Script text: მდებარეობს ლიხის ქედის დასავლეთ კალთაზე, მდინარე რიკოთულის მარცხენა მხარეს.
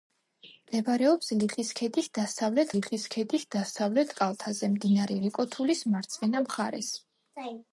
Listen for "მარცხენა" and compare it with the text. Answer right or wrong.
right